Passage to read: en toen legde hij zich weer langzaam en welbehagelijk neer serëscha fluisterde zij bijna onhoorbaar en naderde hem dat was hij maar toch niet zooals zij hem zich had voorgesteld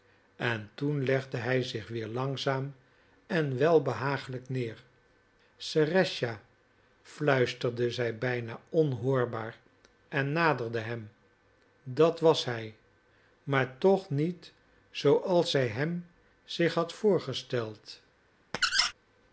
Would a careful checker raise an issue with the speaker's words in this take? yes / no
no